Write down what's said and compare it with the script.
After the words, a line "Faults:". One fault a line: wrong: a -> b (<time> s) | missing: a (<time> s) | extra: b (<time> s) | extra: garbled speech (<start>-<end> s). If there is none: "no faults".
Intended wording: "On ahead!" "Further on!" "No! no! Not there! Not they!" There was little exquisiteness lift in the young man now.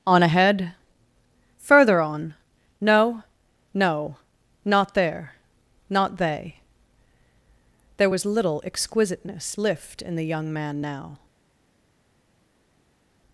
"On ahead!" "Further on!" "No! no! Not there! Not they!" There was little exquisiteness lift in the young man now.
Faults:
no faults